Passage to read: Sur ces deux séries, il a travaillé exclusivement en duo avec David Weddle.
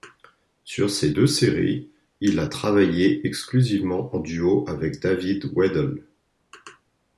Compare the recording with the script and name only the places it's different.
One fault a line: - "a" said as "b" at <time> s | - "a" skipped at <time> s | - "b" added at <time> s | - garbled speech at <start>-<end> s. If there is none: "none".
none